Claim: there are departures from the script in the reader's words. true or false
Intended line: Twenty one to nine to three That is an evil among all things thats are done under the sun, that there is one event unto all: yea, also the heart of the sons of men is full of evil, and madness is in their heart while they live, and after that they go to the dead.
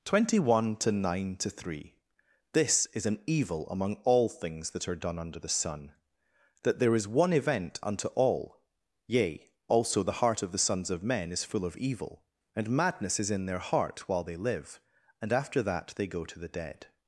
true